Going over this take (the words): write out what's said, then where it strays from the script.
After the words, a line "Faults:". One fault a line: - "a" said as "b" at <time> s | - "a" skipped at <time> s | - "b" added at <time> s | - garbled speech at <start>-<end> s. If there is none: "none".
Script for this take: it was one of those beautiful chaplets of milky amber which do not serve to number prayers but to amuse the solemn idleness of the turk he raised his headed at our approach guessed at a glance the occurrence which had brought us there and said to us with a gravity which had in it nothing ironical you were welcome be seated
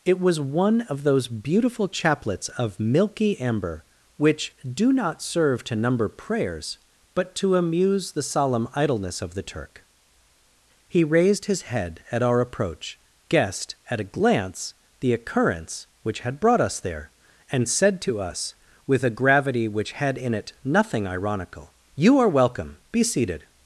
it was one of those beautiful chaplets of milky amber which do not serve to number prayers but to amuse the solemn idleness of the turk he raised his head at our approach guessed at a glance the occurrence which had brought us there and said to us with a gravity which had in it nothing ironical you are welcome be seated
Faults:
- "headed" said as "head" at 11.6 s
- "were" said as "are" at 22.2 s